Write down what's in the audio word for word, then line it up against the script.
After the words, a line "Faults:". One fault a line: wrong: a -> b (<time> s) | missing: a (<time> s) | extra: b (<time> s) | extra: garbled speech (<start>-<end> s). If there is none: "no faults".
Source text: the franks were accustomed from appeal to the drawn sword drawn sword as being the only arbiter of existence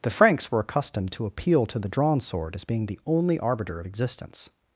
the franks were accustomed to appeal to the drawn sword as being the only arbiter of existence
Faults:
wrong: from -> to (1.1 s)
missing: drawn sword (2.5 s)